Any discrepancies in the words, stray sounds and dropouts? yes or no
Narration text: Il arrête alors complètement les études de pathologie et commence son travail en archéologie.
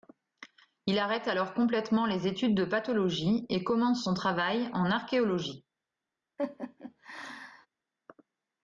yes